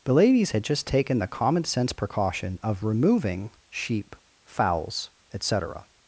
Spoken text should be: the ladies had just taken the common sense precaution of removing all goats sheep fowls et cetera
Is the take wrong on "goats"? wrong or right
wrong